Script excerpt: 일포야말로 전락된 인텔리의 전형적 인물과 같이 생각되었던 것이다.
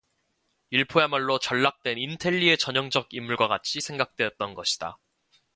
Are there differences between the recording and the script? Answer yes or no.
no